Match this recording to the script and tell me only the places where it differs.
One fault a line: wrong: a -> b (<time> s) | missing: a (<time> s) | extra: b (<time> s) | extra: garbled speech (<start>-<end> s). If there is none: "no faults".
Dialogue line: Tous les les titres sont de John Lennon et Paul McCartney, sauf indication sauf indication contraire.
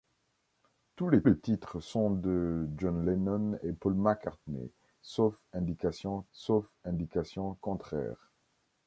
no faults